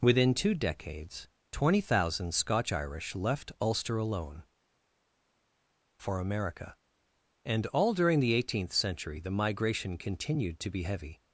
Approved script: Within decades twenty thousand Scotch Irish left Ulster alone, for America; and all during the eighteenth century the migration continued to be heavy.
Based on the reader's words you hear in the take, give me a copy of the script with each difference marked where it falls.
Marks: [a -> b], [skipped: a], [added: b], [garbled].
Within [added: two] decades twenty thousand Scotch Irish left Ulster alone, for America; and all during the eighteenth century the migration continued to be heavy.